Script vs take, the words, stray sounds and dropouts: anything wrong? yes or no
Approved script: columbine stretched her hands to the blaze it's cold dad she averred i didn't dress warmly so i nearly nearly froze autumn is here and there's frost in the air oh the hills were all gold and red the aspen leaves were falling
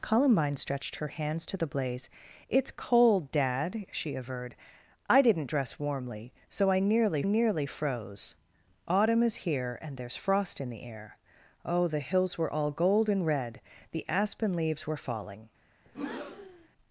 yes